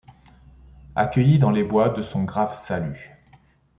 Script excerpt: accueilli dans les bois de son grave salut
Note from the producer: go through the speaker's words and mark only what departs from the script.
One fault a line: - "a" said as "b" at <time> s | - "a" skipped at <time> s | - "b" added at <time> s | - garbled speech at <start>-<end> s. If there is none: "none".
none